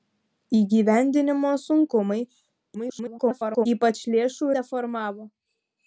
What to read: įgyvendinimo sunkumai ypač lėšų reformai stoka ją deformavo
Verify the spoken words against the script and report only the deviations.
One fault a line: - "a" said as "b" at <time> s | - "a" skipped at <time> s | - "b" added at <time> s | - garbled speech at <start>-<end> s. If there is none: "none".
- garbled speech at 2.7-3.7 s
- "reformai stoka ją" skipped at 4.5 s